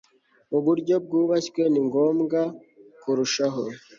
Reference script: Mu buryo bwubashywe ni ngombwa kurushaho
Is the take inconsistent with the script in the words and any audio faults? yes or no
no